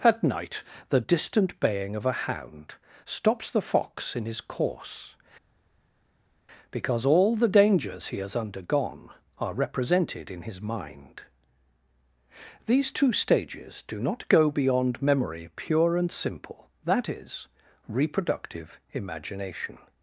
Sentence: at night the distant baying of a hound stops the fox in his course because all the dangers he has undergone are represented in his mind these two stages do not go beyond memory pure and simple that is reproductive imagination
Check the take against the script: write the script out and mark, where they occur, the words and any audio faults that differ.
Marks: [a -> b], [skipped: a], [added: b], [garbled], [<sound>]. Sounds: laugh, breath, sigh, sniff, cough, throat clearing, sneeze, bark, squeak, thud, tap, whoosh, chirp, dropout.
at night the distant baying of a hound stops the fox in his course because all the dangers he has undergone are represented in his mind these two stages do not go beyond memory pure and simple that is reproductive imagination